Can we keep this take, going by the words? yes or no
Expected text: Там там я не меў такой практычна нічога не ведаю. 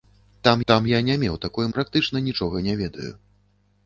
yes